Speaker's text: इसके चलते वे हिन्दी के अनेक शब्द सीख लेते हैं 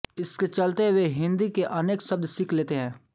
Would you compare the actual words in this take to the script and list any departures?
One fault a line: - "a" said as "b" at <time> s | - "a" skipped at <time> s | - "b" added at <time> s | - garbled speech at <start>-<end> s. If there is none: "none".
none